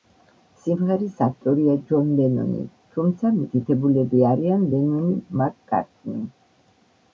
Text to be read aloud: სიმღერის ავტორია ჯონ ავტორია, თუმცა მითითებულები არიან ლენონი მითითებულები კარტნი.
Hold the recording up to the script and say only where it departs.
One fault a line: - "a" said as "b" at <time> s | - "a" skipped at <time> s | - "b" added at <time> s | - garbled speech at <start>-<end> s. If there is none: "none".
- "ავტორია" said as "ლენონი" at 2.2 s
- "მითითებულები" said as "მაკ" at 5.4 s